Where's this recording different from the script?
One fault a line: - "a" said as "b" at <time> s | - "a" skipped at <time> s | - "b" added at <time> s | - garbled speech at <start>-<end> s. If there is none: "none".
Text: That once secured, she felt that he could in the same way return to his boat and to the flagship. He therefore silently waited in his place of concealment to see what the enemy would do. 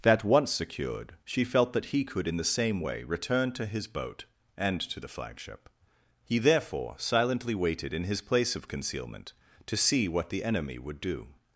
none